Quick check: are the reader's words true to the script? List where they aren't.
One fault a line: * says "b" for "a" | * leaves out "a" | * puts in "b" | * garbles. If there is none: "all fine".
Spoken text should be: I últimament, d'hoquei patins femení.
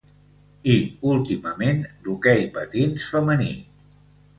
all fine